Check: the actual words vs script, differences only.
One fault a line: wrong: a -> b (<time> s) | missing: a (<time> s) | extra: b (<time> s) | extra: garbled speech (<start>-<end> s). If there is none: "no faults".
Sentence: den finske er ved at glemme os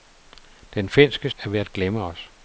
no faults